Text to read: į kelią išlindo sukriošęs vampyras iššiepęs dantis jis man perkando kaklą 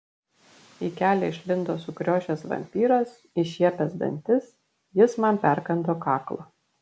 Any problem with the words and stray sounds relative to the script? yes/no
no